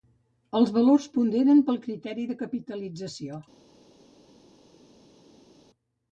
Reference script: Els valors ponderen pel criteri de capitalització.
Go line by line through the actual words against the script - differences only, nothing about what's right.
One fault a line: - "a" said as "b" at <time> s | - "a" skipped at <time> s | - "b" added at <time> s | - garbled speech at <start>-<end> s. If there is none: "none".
none